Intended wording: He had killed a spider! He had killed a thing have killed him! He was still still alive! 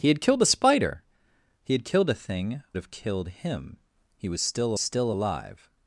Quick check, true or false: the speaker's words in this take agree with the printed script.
true